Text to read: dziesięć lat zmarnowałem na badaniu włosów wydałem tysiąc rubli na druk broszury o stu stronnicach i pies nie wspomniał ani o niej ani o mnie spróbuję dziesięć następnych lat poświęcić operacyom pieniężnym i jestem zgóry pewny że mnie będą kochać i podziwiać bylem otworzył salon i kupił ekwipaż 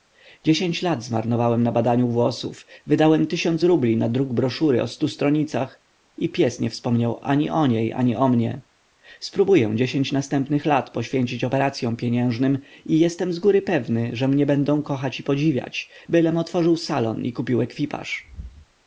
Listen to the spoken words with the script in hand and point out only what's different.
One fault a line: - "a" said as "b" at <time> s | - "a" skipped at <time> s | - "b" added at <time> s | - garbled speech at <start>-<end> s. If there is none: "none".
none